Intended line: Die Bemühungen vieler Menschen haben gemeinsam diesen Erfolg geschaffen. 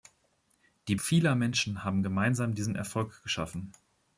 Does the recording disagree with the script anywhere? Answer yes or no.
yes